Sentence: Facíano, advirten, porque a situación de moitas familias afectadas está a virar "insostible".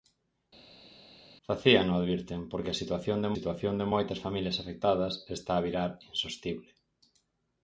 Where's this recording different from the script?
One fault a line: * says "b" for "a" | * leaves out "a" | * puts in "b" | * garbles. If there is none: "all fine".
* puts in "situación de"